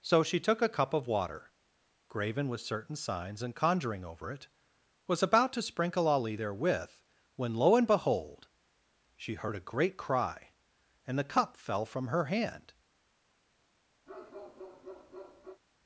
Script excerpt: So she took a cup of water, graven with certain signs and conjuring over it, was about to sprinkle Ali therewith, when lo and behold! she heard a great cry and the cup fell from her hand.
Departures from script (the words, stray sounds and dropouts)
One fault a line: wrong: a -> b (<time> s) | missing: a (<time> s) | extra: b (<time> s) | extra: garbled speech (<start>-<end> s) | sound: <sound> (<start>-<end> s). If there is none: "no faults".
sound: bark (14.1-15.6 s)